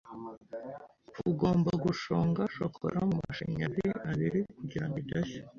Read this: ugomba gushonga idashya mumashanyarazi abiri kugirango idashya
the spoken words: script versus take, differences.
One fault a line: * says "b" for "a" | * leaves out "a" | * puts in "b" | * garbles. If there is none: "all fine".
* says "shokora" for "idashya"